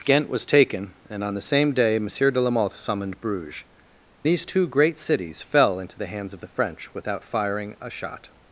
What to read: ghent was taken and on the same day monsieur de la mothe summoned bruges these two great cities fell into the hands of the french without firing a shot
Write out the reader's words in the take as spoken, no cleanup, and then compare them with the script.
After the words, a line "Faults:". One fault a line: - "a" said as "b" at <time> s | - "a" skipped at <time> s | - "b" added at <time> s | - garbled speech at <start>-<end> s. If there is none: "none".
ghent was taken and on the same day monsieur de la mothe summoned bruges these two great cities fell into the hands of the french without firing a shot
Faults:
none